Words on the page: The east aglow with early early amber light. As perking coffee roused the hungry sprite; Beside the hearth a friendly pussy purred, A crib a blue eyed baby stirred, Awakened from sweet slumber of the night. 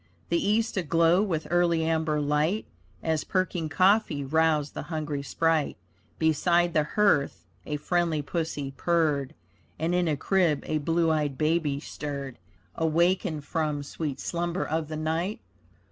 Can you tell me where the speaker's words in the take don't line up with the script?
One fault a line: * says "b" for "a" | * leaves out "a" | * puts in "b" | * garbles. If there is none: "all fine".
* leaves out "early"
* puts in "And in"